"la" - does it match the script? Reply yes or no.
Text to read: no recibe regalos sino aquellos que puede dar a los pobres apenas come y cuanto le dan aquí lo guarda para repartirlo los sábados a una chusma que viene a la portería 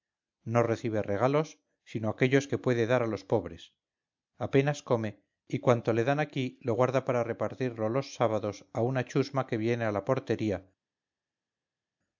yes